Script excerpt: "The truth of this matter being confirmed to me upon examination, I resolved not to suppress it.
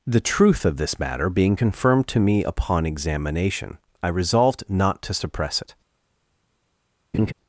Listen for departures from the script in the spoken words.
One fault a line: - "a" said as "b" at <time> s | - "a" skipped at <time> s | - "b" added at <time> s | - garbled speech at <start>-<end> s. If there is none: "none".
none